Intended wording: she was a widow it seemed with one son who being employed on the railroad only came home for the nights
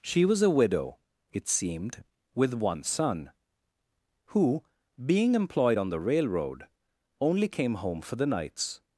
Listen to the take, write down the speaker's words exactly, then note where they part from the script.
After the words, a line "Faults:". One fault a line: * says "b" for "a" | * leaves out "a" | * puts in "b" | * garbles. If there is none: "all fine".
she was a widow it seemed with one son who being employed on the railroad only came home for the nights
Faults:
all fine